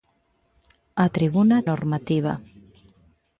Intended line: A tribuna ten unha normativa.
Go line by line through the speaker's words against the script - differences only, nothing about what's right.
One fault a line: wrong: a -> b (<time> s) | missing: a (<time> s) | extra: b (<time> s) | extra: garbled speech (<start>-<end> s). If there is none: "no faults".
missing: ten unha (1.6 s)